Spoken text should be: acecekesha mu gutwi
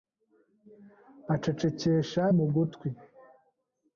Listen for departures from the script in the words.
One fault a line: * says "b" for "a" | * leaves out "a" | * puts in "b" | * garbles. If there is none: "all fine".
all fine